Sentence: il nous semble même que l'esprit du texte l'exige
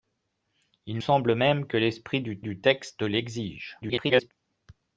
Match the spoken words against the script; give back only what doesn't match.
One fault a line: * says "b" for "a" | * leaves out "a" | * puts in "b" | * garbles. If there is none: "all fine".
* leaves out "nous"
* puts in "du"
* garbles